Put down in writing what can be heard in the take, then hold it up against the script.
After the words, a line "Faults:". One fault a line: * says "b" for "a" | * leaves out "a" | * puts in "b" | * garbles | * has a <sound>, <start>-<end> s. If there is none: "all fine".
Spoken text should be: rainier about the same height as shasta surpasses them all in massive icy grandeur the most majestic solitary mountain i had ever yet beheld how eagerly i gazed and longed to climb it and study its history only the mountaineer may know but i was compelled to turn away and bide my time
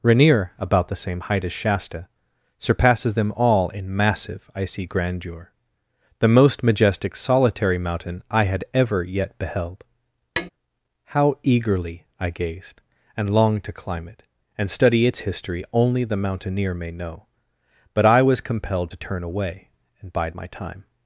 rainier about the same height as shasta surpasses them all in massive icy grandeur the most majestic solitary mountain i had ever yet beheld how eagerly i gazed and longed to climb it and study its history only the mountaineer may know but i was compelled to turn away and bide my time
Faults:
* has a tap, 10.4-10.5 s